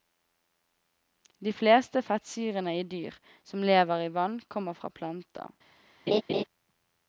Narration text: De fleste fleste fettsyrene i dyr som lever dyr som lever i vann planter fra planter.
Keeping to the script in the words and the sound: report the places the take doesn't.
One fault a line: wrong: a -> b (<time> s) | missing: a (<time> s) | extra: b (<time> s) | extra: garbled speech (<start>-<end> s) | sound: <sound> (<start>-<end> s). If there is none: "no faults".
missing: fleste (2.0 s)
missing: dyr som lever (4.0 s)
wrong: planter -> kommer (4.6 s)
sound: laugh (6.1-6.4 s)